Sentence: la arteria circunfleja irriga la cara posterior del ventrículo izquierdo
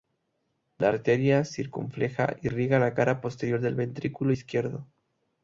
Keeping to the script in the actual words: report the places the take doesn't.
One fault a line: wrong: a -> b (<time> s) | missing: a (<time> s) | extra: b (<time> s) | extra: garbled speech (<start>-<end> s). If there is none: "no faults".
no faults